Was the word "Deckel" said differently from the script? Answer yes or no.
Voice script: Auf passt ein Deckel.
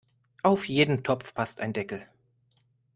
no